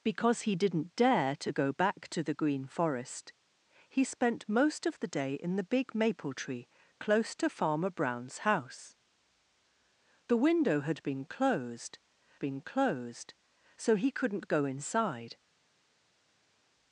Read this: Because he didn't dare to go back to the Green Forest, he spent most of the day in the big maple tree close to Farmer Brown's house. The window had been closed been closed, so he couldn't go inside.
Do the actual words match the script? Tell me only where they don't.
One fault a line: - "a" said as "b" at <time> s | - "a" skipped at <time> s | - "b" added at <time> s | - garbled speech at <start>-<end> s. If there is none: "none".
none